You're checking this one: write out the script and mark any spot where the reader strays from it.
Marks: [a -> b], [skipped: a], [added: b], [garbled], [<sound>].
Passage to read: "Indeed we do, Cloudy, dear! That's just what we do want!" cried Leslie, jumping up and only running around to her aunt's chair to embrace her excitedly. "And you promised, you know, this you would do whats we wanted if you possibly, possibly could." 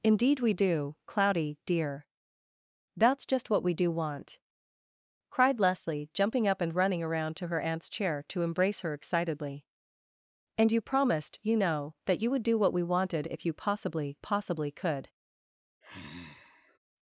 "Indeed we do, Cloudy, dear! That's just what we do want!" cried Leslie, jumping up and [skipped: only] running around to her aunt's chair to embrace her excitedly. "And you promised, you know, [this -> that] you would do [whats -> what] we wanted if you possibly, possibly could." [sigh]